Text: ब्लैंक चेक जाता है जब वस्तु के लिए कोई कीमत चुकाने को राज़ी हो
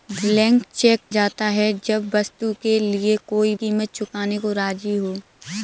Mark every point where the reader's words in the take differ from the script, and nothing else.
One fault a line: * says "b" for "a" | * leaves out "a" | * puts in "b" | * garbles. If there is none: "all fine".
all fine